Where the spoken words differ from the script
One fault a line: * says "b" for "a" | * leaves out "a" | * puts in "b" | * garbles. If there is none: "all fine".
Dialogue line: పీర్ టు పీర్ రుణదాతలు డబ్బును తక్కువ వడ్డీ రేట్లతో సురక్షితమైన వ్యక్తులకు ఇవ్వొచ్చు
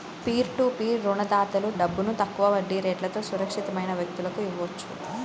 all fine